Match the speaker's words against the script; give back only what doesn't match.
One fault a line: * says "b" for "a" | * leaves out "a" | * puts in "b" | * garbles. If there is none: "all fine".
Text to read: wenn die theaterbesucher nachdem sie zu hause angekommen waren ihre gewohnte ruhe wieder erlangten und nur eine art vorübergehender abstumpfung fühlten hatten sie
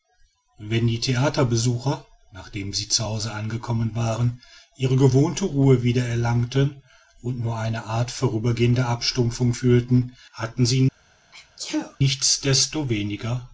all fine